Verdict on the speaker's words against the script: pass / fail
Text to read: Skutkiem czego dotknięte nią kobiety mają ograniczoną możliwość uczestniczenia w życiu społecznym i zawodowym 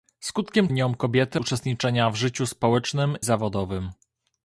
fail